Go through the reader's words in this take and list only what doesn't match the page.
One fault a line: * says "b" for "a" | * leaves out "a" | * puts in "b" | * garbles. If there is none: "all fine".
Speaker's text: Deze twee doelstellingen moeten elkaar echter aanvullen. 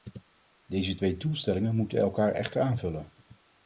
all fine